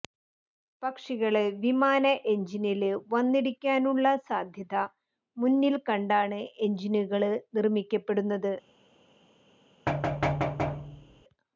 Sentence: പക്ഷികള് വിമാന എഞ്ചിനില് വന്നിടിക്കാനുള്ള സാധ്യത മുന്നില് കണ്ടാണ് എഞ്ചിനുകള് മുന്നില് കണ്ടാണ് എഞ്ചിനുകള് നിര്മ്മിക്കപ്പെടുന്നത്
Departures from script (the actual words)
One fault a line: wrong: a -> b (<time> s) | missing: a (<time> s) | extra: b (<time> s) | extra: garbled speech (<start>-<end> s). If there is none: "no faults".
missing: മുന്നില് കണ്ടാണ് എഞ്ചിനുകള് (7.3 s)